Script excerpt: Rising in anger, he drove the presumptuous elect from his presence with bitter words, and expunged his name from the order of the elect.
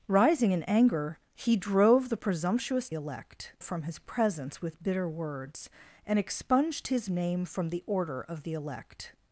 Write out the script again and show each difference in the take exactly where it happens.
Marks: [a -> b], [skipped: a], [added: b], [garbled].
Rising in anger, he drove the presumptuous elect from his presence with bitter words, and expunged his name from the order of the elect.